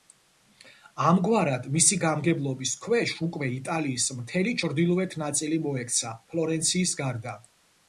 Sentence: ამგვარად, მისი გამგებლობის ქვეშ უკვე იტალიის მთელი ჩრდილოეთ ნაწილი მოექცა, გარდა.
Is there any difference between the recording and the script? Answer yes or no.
yes